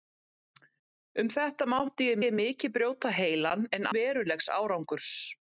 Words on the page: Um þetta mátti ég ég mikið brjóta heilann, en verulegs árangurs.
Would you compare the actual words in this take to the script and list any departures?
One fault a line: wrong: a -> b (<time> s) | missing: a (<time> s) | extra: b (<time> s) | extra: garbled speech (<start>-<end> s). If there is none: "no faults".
no faults